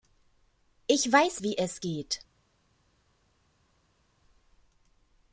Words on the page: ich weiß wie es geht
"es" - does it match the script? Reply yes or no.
yes